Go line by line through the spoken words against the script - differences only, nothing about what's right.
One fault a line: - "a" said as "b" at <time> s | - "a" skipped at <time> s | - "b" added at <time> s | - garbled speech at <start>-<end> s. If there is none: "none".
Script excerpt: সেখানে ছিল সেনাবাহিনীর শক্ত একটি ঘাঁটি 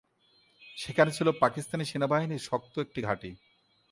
- "পাকিস্তানি" added at 1.4 s